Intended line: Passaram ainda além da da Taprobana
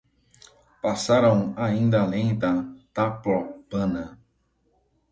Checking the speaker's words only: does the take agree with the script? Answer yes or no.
no